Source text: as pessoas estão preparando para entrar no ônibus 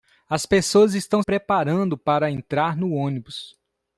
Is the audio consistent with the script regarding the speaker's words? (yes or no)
yes